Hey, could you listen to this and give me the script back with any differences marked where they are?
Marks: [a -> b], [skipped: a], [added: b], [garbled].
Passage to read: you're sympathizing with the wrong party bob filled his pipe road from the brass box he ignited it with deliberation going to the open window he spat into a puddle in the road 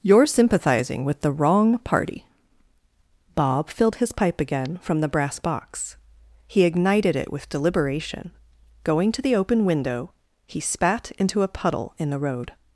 you're sympathizing with the wrong party bob filled his pipe [road -> again] from the brass box he ignited it with deliberation going to the open window he spat into a puddle in the road